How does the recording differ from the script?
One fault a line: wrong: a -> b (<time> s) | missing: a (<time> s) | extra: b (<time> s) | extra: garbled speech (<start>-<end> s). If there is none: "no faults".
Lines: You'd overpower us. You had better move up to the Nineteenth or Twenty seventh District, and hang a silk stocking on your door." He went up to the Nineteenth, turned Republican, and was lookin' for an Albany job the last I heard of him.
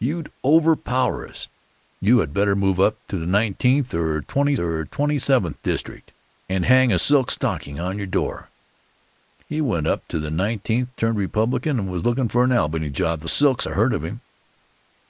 extra: or Twenty (4.6 s)
wrong: last -> silk (13.3 s)